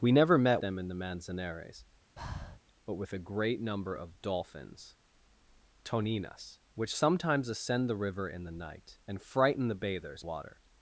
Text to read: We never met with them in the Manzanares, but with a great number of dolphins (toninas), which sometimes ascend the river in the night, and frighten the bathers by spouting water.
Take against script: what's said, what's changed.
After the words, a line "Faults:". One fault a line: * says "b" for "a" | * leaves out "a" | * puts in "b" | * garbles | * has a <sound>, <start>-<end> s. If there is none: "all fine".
We never met them in the Manzanares, but with a great number of dolphins (toninas), which sometimes ascend the river in the night, and frighten the bathers water.
Faults:
* leaves out "with"
* has a breath, 2.2-2.6 s
* leaves out "by spouting"